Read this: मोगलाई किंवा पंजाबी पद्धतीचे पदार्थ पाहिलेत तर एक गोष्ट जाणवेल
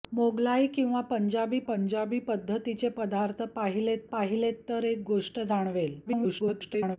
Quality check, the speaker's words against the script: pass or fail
fail